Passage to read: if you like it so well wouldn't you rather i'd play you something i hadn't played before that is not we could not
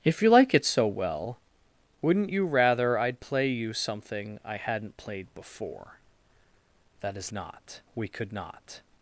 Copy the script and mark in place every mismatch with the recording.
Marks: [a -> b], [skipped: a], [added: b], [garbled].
if you like it so well wouldn't you rather i'd play you something i hadn't played before that is not we could not